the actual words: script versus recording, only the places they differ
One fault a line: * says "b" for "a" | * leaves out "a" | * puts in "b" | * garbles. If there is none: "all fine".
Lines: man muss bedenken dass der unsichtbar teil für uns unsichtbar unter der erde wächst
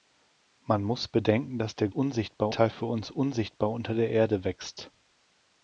all fine